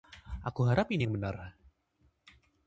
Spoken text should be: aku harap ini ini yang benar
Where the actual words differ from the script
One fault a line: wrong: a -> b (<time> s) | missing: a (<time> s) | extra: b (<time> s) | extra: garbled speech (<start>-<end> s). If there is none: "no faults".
missing: ini (1.1 s)